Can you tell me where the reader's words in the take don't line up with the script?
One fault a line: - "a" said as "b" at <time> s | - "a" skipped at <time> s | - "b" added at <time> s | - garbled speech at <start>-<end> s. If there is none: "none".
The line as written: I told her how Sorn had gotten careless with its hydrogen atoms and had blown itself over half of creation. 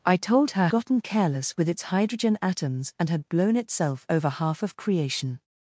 - "how Sorn had" skipped at 0.7 s